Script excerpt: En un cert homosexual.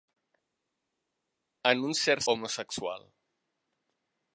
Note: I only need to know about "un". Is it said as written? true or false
true